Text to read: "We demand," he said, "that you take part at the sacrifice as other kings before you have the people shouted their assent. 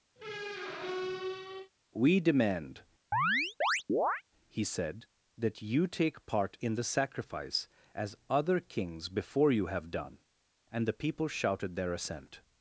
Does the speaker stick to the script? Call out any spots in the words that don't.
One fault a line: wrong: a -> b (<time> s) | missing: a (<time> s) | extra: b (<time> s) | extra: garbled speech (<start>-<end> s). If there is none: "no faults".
wrong: at -> in (6.6 s)
extra: done and (9.9 s)